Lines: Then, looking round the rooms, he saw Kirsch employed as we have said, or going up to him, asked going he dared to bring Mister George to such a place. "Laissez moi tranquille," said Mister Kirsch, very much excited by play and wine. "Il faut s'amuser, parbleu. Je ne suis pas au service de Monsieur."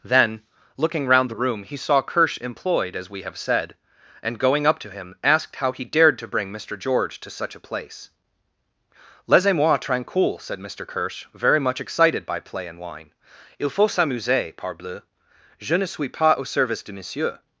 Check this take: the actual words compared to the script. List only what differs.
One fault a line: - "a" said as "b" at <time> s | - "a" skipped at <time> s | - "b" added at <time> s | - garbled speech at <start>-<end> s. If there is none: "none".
- "rooms" said as "room" at 1.4 s
- "or" said as "and" at 4.2 s
- "going" said as "how" at 5.6 s